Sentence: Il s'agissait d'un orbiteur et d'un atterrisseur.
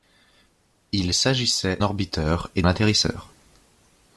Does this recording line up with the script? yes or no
no